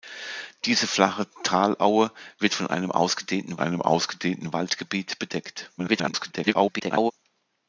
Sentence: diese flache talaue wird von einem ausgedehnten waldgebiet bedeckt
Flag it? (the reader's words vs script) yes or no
yes